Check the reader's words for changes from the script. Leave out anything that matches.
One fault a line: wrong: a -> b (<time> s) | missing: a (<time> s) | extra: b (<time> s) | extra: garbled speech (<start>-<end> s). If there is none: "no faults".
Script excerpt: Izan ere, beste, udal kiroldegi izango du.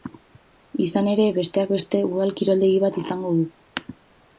extra: besteak (1.4 s)
extra: bat (2.9 s)